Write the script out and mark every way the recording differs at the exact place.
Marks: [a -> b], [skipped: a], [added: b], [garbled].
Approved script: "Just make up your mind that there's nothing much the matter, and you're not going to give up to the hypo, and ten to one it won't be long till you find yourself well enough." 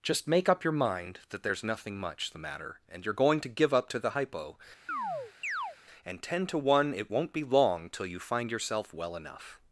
"Just make up your mind that there's nothing much the matter, and you're [skipped: not] going to give up to the hypo, and ten to one it won't be long till you find yourself well enough."